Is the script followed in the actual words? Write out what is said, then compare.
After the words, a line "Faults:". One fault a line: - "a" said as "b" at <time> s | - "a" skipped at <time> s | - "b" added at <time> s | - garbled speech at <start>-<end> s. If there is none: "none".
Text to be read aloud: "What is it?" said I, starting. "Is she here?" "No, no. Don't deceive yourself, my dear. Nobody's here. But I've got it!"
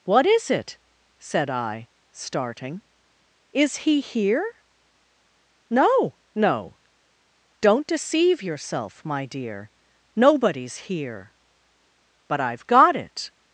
"What is it?" said I, starting. "Is he here?" "No, no. Don't deceive yourself, my dear. Nobody's here. But I've got it!"
Faults:
- "she" said as "he" at 3.8 s